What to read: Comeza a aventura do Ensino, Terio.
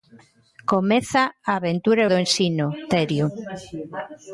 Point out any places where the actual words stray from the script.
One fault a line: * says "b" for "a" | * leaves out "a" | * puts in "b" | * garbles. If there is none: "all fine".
all fine